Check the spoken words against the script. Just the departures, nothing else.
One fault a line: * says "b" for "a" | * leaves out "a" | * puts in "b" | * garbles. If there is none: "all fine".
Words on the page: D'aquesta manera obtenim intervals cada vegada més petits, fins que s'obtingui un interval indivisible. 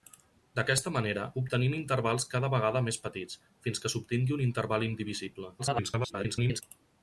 * garbles